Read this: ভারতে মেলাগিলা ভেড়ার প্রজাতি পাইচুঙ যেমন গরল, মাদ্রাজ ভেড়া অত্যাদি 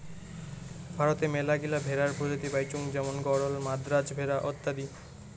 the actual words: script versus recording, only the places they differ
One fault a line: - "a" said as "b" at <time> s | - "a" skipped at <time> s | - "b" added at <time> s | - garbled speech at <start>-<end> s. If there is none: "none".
none